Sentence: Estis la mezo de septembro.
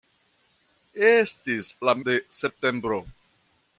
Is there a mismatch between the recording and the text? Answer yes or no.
yes